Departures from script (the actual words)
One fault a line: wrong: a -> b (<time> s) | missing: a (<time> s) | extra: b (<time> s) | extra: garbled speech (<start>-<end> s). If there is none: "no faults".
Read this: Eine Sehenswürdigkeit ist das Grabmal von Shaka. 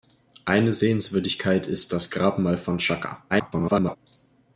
extra: garbled speech (3.3-4.0 s)